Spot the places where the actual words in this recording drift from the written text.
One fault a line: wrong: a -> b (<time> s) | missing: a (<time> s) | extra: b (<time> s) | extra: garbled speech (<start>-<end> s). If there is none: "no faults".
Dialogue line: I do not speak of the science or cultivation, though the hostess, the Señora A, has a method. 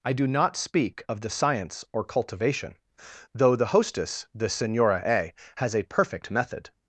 extra: perfect (5.8 s)